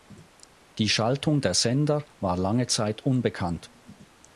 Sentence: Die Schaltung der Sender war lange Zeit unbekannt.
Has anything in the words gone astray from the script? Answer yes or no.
no